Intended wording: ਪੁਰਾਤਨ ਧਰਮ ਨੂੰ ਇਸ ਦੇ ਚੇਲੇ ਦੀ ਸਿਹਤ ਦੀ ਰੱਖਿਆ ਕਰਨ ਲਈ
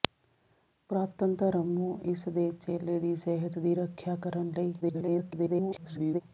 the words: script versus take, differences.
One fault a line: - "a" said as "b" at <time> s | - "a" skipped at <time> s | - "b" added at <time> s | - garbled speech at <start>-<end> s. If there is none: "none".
- garbled speech at 4.8-6.2 s